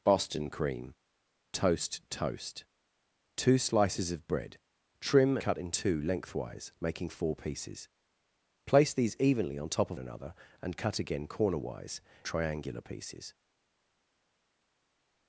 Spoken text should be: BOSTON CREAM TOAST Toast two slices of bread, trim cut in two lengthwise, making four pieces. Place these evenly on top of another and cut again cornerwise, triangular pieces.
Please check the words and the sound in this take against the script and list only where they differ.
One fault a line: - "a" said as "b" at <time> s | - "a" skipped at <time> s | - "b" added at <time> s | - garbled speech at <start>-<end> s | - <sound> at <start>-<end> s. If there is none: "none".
none